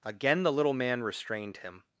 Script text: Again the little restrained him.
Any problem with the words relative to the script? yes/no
yes